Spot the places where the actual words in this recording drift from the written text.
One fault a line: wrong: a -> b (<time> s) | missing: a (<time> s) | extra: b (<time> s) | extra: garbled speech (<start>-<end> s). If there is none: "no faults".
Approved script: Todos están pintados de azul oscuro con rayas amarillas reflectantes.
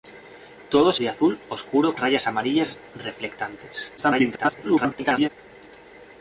missing: están pintados (1.0 s)
missing: con (2.0 s)
extra: garbled speech (4.0-5.3 s)